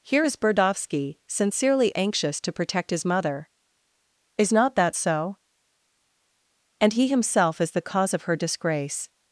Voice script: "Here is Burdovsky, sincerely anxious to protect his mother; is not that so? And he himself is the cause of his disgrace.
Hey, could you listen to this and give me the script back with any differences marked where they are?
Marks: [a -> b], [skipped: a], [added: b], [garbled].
"Here is Burdovsky, sincerely anxious to protect his mother; is not that so? And he himself is the cause of [his -> her] disgrace.